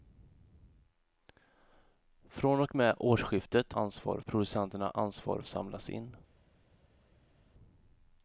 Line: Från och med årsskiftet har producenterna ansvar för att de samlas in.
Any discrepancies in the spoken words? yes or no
yes